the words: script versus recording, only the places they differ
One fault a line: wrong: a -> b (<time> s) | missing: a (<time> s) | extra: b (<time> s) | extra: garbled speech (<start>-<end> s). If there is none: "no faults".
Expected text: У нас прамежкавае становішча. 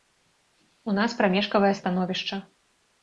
no faults